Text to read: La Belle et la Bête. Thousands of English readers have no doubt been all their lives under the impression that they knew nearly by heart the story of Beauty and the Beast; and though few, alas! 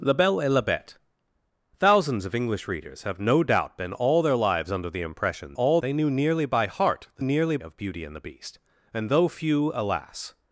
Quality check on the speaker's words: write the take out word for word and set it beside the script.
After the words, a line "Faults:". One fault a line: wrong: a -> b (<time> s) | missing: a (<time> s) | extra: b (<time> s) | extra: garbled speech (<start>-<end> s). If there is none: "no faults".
La Belle et la Bête. Thousands of English readers have no doubt been all their lives under the impression all they knew nearly by heart the nearly of Beauty and the Beast; and though few, alas!
Faults:
wrong: that -> all (5.5 s)
wrong: story -> nearly (7.2 s)